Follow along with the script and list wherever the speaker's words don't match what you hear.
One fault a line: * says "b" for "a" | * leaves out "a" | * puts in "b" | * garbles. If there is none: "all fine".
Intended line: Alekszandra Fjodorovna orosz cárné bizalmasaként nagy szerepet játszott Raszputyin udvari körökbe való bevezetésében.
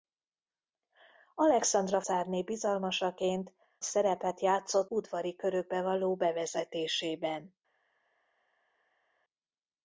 * leaves out "Fjodorovna orosz"
* leaves out "nagy"
* leaves out "Raszputyin"